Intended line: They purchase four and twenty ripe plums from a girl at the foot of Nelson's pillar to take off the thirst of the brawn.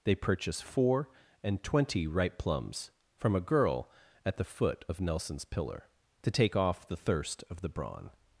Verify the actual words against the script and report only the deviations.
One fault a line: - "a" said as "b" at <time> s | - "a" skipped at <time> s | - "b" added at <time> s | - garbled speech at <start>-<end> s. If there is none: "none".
none